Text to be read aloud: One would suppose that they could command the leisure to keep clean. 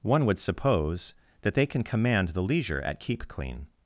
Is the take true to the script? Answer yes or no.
no